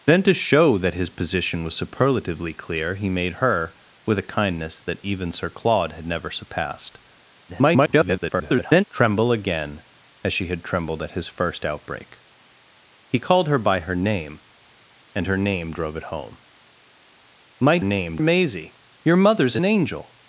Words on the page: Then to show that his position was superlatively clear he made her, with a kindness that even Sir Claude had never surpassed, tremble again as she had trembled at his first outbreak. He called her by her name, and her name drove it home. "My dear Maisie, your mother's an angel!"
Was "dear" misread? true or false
true